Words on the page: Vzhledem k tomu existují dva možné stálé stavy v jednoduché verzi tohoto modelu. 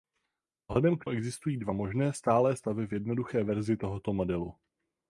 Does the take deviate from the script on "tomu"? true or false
true